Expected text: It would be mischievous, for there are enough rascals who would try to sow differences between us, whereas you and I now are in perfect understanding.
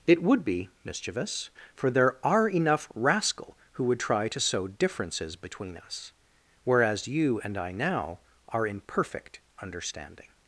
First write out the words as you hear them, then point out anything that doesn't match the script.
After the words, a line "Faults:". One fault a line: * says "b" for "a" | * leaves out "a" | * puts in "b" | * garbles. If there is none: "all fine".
It would be mischievous, for there are enough rascal who would try to sow differences between us, whereas you and I now are in perfect understanding.
Faults:
* says "rascal" for "rascals"